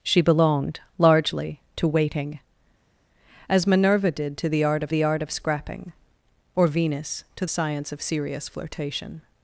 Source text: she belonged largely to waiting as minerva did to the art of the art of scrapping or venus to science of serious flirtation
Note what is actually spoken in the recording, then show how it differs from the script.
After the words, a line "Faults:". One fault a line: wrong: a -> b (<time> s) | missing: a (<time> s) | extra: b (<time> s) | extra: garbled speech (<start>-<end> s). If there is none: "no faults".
she belonged largely to waiting as minerva did to the art of the art of scrapping or venus to science of serious flirtation
Faults:
no faults